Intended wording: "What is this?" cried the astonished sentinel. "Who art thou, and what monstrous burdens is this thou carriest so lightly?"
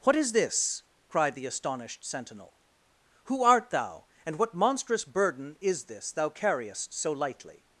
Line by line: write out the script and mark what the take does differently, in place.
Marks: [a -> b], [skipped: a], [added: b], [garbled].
"What is this?" cried the astonished sentinel. "Who art thou, and what monstrous [burdens -> burden] is this thou carriest so lightly?"